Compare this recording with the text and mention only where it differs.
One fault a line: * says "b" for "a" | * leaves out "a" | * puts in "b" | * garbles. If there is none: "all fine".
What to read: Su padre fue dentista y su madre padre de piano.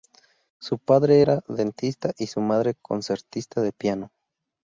* says "era" for "fue"
* says "concertista" for "padre"